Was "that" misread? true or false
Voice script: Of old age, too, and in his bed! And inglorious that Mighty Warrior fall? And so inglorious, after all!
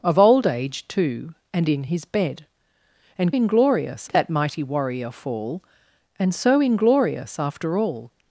false